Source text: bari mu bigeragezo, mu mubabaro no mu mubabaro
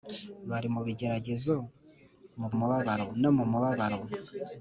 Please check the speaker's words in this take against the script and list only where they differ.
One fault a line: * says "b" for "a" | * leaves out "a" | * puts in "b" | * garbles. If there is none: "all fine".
all fine